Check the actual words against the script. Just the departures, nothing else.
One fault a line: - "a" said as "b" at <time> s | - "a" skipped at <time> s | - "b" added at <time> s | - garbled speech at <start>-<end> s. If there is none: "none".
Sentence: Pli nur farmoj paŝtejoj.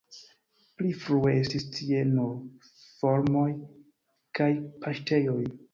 - "frue estis tie" added at 1.0 s
- "kaj" added at 4.4 s